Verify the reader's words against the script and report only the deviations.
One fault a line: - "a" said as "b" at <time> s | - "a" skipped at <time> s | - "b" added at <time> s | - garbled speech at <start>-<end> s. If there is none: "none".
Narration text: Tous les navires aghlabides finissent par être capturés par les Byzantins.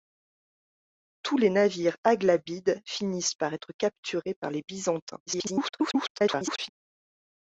- garbled speech at 5.3-6.7 s